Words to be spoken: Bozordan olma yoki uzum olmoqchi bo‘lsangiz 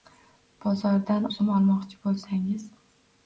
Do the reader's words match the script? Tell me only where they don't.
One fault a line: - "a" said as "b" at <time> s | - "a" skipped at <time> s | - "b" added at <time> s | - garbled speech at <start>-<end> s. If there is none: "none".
- "olma yoki" skipped at 1.3 s